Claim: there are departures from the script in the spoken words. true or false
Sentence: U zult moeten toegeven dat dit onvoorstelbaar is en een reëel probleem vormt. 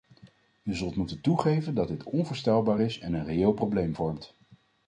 false